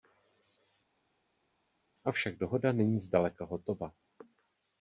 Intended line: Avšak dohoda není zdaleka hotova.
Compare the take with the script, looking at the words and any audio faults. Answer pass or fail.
pass